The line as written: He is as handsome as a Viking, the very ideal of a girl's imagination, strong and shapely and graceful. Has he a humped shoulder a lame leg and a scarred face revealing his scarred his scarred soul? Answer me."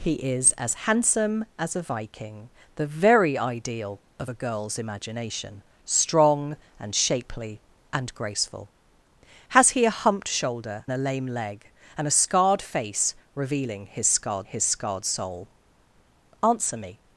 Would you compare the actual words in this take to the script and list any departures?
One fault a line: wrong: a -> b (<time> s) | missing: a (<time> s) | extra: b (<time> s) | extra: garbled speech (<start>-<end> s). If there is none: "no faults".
no faults